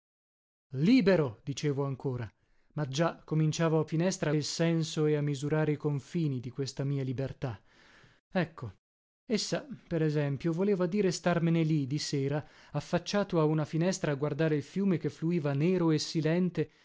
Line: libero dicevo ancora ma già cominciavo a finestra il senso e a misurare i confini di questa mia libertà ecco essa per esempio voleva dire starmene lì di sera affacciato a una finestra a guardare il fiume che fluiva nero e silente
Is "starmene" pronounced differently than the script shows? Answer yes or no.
no